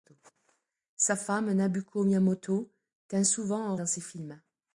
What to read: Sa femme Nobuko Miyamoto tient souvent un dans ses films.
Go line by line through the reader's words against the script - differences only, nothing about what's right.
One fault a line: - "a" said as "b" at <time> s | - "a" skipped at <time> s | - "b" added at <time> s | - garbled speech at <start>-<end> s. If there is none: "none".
none